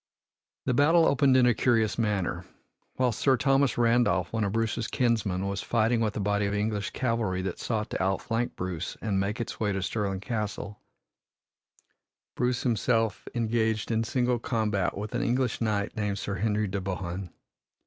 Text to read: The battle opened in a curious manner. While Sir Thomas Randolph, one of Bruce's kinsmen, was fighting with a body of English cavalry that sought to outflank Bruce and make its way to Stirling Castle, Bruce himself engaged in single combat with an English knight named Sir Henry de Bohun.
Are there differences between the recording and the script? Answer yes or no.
no